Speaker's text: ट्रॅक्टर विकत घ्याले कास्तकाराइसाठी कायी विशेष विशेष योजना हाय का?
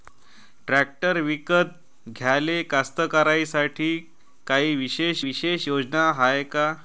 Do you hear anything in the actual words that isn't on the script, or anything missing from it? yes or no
no